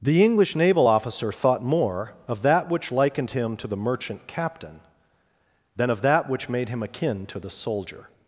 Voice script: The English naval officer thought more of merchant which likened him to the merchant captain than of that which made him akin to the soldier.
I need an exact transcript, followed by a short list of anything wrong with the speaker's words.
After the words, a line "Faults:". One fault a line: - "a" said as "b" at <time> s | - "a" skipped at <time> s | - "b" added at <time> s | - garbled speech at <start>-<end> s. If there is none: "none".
The English naval officer thought more of that which likened him to the merchant captain than of that which made him akin to the soldier.
Faults:
- "merchant" said as "that" at 2.4 s